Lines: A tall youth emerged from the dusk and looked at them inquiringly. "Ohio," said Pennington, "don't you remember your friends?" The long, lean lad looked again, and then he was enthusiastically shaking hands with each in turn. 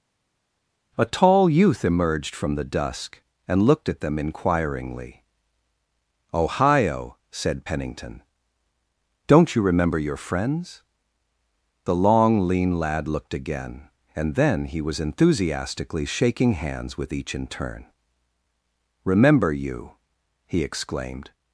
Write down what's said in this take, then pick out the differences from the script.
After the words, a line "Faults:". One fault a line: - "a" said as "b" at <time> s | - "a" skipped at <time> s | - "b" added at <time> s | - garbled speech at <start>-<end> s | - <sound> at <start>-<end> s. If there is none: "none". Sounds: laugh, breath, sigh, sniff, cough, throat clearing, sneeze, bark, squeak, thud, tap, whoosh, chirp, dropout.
A tall youth emerged from the dusk and looked at them inquiringly. "Ohio," said Pennington, "don't you remember your friends?" The long, lean lad looked again, and then he was enthusiastically shaking hands with each in turn. "Remember you!" he exclaimed
Faults:
- "Remember you he exclaimed" added at 19.1 s